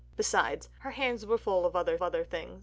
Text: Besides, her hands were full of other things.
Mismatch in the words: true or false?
true